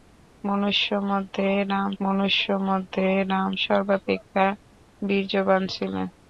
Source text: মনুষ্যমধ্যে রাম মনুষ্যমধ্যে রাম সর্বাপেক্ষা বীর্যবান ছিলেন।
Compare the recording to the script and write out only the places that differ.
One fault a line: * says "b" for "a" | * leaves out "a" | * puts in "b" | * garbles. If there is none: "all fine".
all fine